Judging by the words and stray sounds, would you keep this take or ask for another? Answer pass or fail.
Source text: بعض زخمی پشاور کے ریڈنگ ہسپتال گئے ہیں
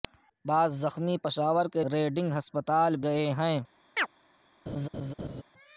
fail